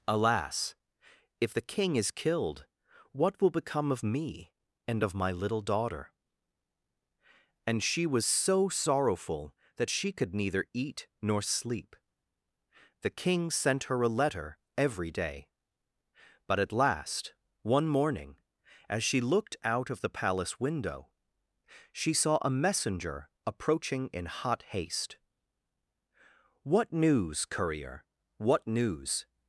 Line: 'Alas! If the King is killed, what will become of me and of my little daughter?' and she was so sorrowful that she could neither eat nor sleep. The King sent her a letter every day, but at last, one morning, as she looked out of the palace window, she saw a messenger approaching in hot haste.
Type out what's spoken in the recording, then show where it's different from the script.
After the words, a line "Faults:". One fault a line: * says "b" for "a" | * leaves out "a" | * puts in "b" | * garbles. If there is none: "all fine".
'Alas! If the King is killed, what will become of me and of my little daughter?' and she was so sorrowful that she could neither eat nor sleep. The King sent her a letter every day, but at last, one morning, as she looked out of the palace window, she saw a messenger approaching in hot haste. 'What news, courier? What news
Faults:
* puts in "What news courier What news"